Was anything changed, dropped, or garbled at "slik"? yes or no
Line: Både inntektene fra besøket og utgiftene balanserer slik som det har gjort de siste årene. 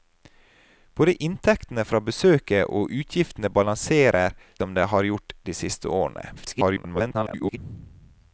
yes